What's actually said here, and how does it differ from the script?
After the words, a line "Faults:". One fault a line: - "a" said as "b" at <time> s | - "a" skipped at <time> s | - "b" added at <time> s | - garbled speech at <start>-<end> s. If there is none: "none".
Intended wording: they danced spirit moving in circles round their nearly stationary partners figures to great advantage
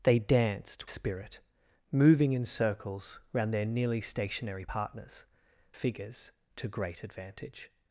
they danced spirit moving in circles round their nearly stationary partners figures to great advantage
Faults:
none